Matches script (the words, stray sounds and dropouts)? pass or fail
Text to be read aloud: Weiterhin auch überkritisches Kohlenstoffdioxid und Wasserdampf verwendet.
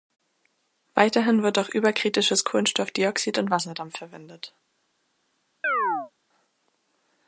fail